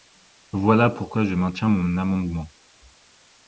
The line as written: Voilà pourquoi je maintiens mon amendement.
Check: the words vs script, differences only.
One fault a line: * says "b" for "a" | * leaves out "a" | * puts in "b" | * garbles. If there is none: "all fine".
all fine